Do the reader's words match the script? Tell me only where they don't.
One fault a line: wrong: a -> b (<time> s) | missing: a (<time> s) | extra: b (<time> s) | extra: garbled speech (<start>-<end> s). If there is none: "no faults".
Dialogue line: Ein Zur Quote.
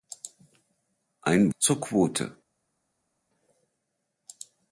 no faults